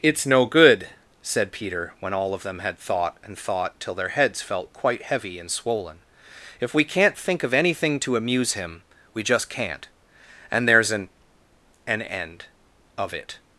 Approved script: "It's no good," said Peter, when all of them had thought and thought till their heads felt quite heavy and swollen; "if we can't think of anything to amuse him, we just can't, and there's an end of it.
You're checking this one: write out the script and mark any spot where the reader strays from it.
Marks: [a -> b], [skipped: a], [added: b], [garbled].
"It's no good," said Peter, when all of them had thought and thought till their heads felt quite heavy and swollen; "if we can't think of anything to amuse him, we just can't, and there's an [added: an] end of it.